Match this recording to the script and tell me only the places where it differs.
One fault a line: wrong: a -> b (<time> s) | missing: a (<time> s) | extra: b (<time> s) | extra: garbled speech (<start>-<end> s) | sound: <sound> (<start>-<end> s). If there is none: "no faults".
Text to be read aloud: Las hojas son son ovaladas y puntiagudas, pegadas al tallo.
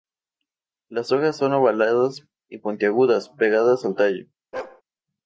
missing: son (1.5 s)
sound: bark (4.5-4.8 s)